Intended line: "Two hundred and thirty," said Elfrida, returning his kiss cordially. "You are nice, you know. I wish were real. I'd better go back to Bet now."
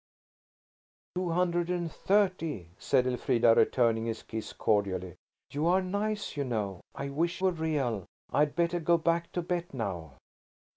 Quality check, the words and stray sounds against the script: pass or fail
pass